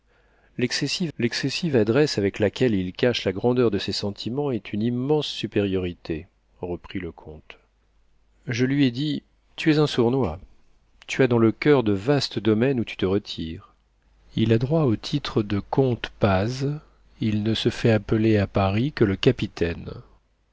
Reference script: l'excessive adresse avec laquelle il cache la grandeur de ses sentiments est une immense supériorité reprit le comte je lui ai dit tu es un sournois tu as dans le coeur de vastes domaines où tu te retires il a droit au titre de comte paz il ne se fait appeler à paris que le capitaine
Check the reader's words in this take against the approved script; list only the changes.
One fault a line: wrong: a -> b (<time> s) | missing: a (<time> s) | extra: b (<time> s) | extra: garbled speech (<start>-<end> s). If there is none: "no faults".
extra: l'excessive (1.2 s)